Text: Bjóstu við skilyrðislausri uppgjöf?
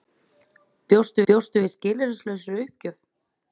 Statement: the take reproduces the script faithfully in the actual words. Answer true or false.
false